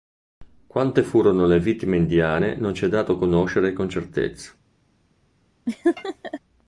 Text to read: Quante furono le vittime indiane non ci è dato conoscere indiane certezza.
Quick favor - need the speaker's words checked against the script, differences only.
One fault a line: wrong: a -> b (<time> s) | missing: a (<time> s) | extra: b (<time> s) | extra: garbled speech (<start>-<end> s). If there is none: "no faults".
wrong: indiane -> con (3.7 s)